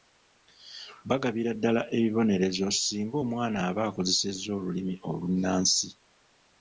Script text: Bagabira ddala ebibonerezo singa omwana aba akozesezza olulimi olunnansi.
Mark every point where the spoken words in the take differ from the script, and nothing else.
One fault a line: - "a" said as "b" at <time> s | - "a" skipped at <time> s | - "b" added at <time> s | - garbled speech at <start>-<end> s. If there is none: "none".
none